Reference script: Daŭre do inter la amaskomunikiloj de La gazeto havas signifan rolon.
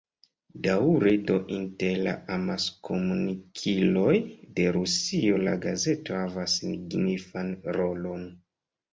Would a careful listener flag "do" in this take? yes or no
no